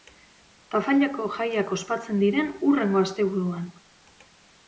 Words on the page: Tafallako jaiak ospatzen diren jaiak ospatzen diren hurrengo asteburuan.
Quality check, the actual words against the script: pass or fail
fail